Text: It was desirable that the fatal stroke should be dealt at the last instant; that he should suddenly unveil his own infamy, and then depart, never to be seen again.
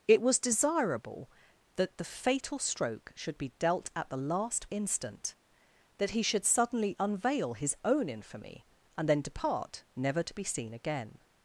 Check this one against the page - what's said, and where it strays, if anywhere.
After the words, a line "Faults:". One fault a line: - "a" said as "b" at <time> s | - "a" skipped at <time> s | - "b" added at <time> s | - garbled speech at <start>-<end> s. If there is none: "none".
It was desirable that the fatal stroke should be dealt at the last instant; that he should suddenly unveil his own infamy, and then depart, never to be seen again.
Faults:
none